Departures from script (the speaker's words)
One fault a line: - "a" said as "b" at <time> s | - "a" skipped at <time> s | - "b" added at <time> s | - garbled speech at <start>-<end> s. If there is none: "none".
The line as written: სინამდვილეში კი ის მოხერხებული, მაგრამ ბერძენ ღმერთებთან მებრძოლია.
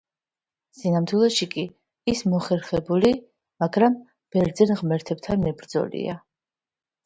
none